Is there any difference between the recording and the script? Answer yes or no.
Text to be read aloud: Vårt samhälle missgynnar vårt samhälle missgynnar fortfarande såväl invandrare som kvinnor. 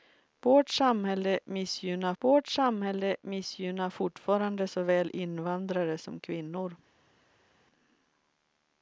no